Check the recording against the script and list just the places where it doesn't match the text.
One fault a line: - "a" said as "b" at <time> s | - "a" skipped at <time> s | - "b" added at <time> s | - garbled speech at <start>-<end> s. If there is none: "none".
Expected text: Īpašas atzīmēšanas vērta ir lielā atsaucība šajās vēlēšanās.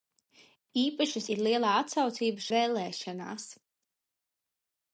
- "atzīmēšanas vērta" skipped at 1.3 s
- "šajās" skipped at 2.5 s